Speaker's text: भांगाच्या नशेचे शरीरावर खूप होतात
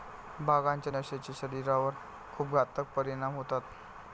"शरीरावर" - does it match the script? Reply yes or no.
yes